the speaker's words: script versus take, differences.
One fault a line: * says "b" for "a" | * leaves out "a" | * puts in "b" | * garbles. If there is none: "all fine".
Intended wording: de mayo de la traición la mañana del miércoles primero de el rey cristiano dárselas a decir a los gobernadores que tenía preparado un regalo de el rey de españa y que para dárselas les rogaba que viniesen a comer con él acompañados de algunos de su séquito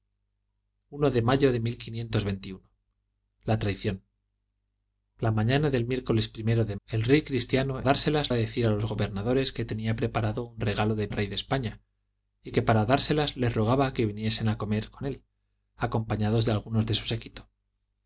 all fine